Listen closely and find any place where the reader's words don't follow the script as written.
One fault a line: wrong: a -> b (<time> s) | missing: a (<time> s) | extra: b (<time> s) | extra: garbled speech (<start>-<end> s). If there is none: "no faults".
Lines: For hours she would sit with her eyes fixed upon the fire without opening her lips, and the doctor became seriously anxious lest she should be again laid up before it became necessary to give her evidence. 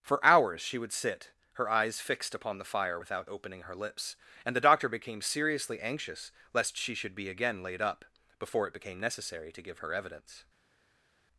missing: with (1.3 s)